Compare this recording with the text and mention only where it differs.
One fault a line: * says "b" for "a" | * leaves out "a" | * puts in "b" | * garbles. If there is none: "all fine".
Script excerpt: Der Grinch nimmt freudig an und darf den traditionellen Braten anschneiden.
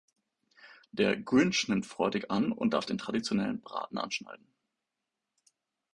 all fine